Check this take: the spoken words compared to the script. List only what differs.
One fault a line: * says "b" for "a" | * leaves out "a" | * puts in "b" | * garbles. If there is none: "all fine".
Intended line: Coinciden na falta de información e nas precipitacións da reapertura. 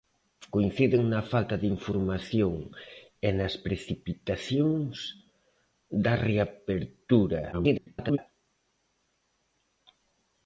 * garbles